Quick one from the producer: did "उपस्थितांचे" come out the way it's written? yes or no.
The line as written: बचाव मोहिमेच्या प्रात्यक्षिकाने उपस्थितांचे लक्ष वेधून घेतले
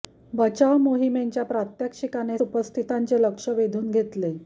yes